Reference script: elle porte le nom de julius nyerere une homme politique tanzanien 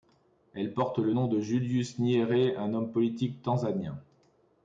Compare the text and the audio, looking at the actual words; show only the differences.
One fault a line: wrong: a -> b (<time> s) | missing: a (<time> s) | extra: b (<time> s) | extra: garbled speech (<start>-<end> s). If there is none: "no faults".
wrong: une -> un (2.6 s)